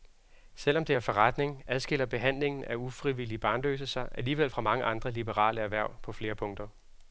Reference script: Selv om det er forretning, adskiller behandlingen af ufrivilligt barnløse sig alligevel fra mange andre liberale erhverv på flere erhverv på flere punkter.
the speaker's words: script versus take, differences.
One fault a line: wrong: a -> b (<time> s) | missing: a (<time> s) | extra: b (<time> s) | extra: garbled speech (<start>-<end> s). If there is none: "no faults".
missing: erhverv på flere (6.3 s)